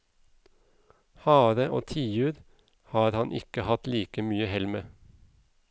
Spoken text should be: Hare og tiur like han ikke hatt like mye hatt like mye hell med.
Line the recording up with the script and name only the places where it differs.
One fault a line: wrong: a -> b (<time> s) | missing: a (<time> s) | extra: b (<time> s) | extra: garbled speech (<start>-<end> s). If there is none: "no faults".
wrong: like -> har (2.9 s)
missing: hatt like mye (4.5 s)